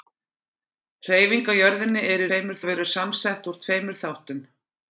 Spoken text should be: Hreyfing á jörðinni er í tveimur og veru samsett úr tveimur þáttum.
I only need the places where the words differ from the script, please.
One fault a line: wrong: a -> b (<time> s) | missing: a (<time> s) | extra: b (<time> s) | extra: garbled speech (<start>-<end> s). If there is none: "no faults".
no faults